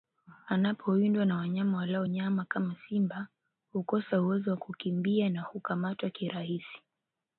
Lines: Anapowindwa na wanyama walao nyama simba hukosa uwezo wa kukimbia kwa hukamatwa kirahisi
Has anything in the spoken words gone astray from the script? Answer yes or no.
yes